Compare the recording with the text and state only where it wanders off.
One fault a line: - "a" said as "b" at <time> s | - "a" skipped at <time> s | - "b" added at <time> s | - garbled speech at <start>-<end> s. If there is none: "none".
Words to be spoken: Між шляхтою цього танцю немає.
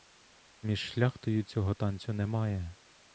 none